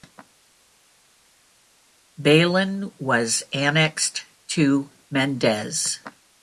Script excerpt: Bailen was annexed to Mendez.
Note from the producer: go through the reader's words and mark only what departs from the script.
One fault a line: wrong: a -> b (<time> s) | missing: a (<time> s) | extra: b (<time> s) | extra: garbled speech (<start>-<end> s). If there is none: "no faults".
no faults